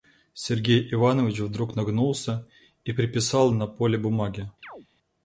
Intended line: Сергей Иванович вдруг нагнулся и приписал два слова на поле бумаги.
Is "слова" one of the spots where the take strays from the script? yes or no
yes